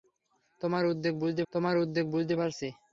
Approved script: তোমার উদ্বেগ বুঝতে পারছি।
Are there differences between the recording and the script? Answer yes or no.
yes